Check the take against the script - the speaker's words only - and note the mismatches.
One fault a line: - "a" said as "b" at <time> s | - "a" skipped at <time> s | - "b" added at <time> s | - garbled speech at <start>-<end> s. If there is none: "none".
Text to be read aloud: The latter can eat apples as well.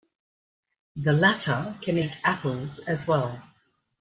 none